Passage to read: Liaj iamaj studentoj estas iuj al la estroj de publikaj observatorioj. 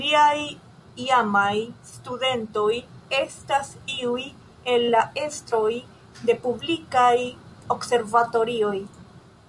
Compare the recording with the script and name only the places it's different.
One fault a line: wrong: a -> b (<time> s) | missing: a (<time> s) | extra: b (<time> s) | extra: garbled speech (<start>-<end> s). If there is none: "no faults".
wrong: al -> el (4.7 s)